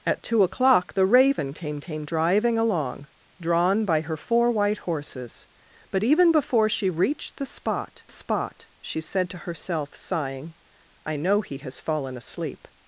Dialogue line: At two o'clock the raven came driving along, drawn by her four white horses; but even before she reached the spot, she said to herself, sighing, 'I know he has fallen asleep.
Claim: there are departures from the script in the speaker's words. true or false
true